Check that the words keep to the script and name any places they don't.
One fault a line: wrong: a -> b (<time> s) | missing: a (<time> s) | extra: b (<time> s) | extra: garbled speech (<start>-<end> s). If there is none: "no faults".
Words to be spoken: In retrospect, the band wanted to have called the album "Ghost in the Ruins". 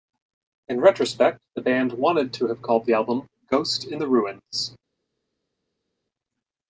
no faults